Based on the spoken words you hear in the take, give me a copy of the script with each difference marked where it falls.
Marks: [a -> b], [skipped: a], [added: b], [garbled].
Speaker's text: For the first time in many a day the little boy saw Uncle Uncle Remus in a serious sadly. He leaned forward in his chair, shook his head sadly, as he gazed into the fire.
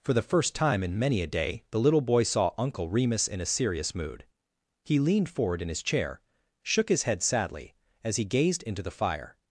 For the first time in many a day the little boy saw Uncle [skipped: Uncle] Remus in a serious [sadly. -> mood] He leaned forward in his chair, shook his head sadly, as he gazed into the fire.